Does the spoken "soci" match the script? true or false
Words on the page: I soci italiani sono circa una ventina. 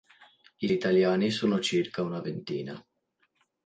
false